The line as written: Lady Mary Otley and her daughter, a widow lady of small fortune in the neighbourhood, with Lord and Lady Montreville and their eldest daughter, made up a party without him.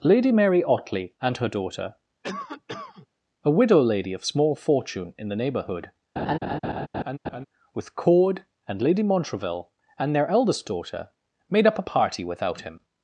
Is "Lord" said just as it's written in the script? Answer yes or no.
no